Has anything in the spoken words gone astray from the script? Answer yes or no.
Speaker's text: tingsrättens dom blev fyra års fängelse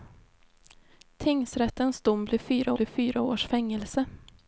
yes